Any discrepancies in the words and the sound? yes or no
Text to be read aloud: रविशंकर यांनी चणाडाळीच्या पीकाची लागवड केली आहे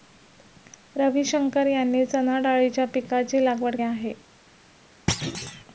yes